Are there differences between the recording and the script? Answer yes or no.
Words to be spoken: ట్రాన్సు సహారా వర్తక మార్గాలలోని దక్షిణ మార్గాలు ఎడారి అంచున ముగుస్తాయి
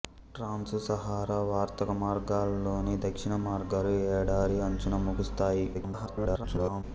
yes